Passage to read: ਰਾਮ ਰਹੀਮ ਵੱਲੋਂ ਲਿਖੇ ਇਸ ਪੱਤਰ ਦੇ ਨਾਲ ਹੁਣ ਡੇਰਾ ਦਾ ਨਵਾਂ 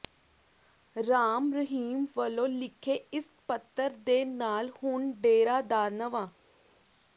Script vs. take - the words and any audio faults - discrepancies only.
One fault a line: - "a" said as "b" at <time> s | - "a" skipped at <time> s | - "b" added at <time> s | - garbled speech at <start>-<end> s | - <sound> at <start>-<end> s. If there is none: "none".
none